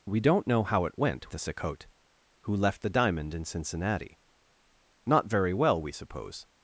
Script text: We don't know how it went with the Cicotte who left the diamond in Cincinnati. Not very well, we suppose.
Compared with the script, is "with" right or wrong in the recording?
wrong